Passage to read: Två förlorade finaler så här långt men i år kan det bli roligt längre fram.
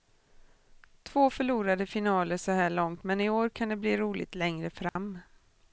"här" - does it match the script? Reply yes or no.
yes